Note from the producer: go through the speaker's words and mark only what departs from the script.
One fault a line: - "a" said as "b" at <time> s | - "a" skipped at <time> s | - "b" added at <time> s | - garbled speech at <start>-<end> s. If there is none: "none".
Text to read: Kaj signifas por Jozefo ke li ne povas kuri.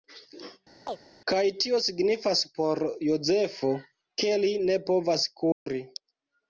- "tio" added at 1.6 s